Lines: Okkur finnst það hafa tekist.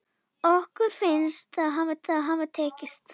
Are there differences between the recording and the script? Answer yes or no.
yes